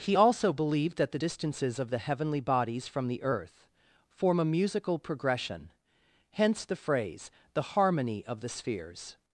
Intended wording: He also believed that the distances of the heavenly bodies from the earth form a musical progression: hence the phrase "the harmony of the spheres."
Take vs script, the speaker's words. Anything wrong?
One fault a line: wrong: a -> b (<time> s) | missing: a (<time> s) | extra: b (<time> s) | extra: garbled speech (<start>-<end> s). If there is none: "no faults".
no faults